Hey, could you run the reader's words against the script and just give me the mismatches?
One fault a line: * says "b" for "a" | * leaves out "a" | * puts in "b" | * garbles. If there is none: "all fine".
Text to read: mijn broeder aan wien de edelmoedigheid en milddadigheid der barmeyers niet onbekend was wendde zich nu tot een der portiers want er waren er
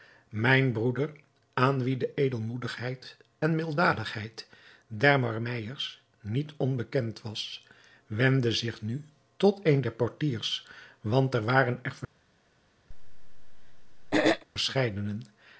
all fine